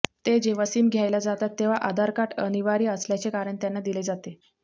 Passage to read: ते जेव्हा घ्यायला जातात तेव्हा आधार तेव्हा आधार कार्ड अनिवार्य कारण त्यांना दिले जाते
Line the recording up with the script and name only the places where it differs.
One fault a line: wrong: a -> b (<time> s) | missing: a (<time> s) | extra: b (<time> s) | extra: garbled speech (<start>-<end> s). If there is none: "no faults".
extra: सिम (0.6 s)
missing: तेव्हा आधार (2.1 s)
extra: असल्याचे (2.9 s)